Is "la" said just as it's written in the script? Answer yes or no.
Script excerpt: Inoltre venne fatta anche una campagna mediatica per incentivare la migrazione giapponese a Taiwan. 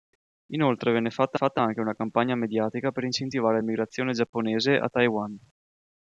no